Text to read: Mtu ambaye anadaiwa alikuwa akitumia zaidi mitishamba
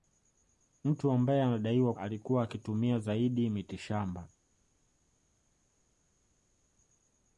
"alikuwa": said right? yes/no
yes